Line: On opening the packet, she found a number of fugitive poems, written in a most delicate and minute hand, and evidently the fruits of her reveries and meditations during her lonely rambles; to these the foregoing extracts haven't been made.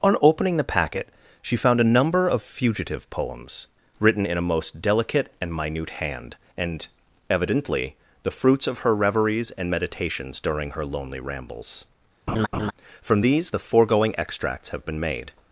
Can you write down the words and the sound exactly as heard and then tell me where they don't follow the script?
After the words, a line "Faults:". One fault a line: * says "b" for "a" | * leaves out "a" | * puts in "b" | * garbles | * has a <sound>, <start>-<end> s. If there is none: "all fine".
On opening the packet, she found a number of fugitive poems, written in a most delicate and minute hand, and evidently the fruits of her reveries and meditations during her lonely rambles; from these the foregoing extracts have been made.
Faults:
* has a laugh, 12.3-12.7 s
* says "from" for "to"
* says "have" for "haven't"